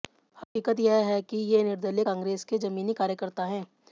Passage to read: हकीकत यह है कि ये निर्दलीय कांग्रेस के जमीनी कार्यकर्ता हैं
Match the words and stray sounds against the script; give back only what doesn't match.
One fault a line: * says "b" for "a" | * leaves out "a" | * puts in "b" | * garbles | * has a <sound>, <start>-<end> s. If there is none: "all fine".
* has a dropout, 0.4-0.6 s